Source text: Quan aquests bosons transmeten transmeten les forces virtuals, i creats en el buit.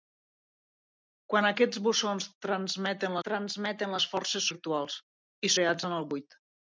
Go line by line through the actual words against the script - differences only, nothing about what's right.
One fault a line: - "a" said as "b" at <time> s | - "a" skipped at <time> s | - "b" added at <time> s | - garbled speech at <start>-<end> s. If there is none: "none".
none